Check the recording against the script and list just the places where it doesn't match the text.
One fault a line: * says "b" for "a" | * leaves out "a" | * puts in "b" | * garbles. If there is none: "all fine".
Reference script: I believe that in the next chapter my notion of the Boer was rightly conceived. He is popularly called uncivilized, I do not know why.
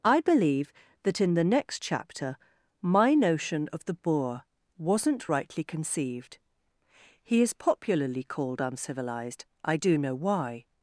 * says "wasn't" for "was"
* leaves out "not"